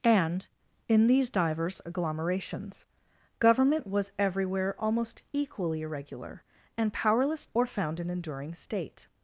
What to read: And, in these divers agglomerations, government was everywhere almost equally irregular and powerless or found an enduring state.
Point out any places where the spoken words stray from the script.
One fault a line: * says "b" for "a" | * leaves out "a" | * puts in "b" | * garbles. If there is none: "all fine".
all fine